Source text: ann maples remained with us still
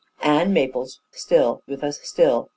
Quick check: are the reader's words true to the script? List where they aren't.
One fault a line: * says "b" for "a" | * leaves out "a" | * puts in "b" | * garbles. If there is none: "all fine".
* says "still" for "remained"